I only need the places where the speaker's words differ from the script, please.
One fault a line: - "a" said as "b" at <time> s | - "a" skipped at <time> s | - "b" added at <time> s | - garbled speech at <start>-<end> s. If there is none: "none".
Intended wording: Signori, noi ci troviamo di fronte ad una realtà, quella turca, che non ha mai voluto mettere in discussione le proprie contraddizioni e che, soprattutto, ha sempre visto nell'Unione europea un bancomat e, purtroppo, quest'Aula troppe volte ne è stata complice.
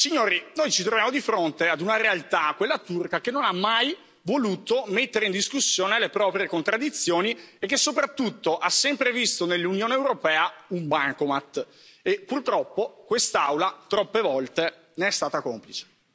none